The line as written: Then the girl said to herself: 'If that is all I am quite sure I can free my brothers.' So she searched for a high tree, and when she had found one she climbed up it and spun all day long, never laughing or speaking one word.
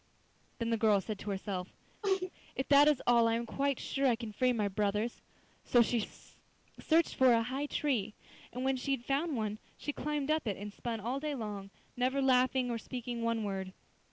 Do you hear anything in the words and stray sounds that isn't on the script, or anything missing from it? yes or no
yes